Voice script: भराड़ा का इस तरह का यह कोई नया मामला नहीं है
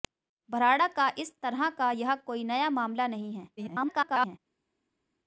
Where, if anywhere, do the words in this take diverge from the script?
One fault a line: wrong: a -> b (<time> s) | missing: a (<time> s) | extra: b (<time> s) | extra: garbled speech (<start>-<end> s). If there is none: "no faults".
extra: garbled speech (3.6-4.4 s)